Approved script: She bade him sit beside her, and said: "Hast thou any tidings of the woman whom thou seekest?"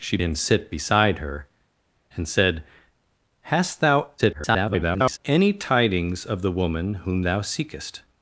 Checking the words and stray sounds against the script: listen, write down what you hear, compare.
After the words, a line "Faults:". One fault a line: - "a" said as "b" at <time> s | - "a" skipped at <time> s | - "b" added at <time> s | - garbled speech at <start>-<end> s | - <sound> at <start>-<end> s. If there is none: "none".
She him sit beside her, and said: "Hast thou [garbled] any tidings of the woman whom thou seekest?"
Faults:
- "bade" skipped at 0.2 s
- garbled speech at 4.2-5.2 s